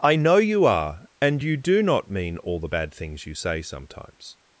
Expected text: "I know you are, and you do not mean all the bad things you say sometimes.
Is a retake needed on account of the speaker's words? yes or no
no